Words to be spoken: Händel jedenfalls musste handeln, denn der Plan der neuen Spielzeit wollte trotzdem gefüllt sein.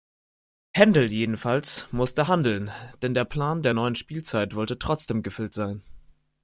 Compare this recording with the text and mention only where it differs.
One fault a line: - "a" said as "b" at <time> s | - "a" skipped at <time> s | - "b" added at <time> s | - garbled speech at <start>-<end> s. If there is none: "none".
none